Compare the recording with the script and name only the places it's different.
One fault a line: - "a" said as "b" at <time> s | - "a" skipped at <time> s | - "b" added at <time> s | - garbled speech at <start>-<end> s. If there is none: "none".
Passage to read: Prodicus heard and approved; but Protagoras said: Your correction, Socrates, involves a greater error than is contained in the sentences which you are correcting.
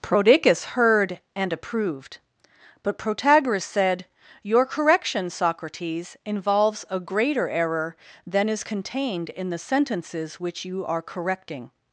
none